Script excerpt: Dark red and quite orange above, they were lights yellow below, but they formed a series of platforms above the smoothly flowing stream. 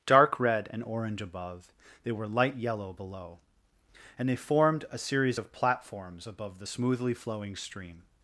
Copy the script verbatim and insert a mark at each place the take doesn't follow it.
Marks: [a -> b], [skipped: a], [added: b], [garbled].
Dark red and [skipped: quite] orange above, they were [lights -> light] yellow below, [but -> and] they formed a series of platforms above the smoothly flowing stream.